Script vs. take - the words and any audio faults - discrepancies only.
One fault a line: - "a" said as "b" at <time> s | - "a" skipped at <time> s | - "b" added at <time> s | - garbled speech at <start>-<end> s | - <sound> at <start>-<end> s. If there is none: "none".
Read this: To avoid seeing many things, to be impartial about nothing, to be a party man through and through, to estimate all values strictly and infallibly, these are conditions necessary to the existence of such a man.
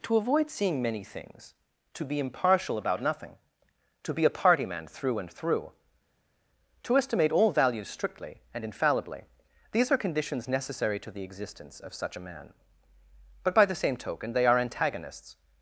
- "But by the same token they are antagonists" added at 13.4 s